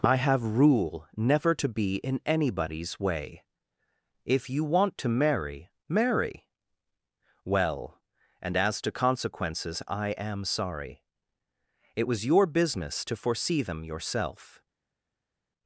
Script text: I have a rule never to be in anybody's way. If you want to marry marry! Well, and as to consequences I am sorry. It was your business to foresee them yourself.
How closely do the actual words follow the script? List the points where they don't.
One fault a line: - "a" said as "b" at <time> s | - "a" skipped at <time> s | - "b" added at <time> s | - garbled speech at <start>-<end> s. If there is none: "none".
- "a" skipped at 0.6 s